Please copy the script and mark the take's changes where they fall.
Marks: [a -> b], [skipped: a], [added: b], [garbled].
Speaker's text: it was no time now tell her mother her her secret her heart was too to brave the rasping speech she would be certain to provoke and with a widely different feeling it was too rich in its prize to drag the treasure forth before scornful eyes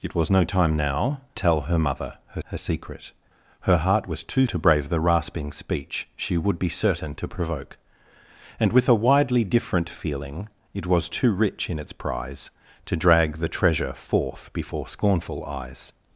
it was no time now tell her mother her her secret her heart was too to brave the rasping speech she would be certain to provoke and with a widely different feeling it was too rich in its prize to drag the treasure forth before scornful eyes